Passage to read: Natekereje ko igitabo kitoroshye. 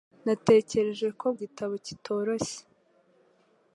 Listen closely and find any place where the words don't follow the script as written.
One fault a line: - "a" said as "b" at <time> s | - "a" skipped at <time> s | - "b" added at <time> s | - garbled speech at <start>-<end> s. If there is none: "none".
none